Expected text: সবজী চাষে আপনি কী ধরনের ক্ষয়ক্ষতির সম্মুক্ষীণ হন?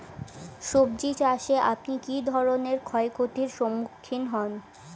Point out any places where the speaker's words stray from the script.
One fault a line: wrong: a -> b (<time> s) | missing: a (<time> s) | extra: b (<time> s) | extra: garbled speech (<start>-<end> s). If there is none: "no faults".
no faults